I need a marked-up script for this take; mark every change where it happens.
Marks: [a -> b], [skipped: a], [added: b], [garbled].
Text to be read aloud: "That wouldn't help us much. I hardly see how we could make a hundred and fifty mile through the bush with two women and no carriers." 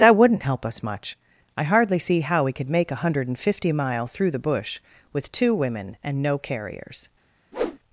"That wouldn't help us much. I hardly see how we could make a hundred and fifty mile through the bush with two women and no carriers."